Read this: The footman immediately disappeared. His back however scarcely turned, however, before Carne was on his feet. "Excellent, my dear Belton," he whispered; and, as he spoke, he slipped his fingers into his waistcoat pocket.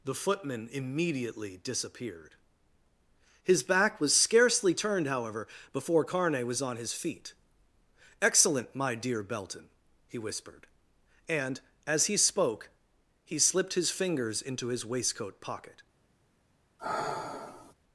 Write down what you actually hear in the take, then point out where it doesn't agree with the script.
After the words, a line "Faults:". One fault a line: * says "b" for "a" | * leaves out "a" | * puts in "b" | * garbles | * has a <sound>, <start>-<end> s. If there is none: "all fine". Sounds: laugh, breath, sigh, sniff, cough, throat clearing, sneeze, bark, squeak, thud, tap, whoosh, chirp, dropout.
The footman immediately disappeared. His back was scarcely turned, however, before Carne was on his feet. "Excellent, my dear Belton," he whispered; and, as he spoke, he slipped his fingers into his waistcoat pocket.
Faults:
* says "was" for "however"
* has a sigh, 16.8-17.7 s